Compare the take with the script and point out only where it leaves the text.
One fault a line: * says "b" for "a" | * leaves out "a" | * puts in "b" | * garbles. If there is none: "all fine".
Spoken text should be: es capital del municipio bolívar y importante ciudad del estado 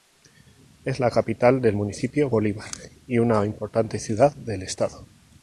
* puts in "la"
* puts in "una"